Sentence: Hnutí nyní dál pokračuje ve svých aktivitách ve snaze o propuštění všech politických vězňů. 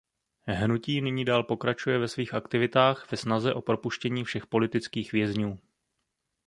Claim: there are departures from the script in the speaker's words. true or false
false